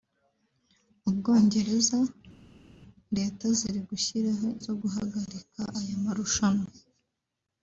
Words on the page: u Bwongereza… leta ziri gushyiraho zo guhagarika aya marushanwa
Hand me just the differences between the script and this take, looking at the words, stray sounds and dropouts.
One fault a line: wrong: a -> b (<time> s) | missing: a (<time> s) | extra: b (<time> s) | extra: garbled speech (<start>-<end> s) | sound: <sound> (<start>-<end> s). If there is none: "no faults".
no faults